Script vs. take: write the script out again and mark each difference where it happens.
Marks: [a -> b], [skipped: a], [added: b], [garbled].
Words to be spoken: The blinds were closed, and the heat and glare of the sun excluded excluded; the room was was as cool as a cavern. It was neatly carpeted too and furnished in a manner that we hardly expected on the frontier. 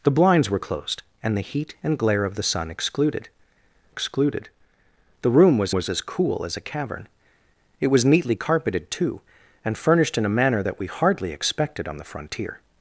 The blinds were closed, and the heat and glare of the sun excluded excluded; the room was was as cool as a cavern. It was neatly carpeted too and furnished in a manner that we hardly expected on the frontier.